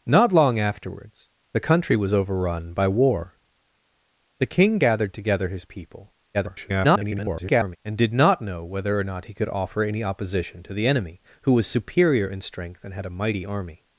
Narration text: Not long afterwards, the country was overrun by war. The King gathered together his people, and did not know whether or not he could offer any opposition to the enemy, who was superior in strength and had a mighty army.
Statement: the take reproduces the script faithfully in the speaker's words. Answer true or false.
false